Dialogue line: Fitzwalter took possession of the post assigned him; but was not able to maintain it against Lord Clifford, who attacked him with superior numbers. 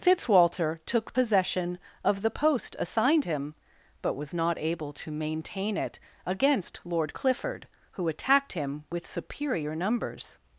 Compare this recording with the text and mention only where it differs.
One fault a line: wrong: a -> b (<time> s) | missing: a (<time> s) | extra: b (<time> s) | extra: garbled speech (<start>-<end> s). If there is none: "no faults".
no faults